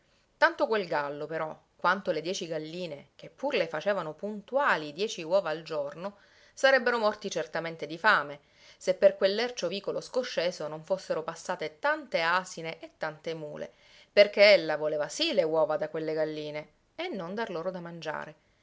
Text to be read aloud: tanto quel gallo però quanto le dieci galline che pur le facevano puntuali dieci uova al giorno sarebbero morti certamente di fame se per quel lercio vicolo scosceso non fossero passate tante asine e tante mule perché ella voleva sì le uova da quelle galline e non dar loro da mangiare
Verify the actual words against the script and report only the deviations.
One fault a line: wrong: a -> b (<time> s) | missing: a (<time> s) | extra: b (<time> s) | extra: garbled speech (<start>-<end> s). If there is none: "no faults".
no faults